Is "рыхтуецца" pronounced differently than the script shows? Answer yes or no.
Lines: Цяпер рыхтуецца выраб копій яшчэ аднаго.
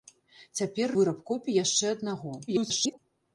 yes